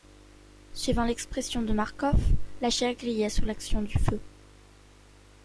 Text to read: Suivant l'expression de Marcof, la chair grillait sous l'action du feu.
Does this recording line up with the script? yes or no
yes